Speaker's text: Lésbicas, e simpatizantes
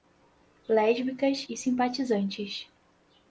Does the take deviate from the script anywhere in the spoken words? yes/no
no